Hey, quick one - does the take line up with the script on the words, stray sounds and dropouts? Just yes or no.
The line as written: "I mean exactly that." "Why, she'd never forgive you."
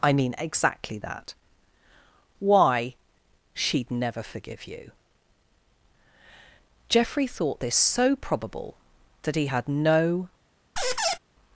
no